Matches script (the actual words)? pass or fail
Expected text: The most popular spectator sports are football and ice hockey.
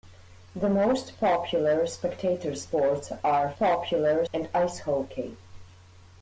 fail